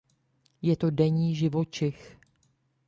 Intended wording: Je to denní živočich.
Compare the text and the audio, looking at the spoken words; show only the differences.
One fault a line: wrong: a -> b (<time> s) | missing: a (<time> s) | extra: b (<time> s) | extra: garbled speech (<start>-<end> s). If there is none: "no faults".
no faults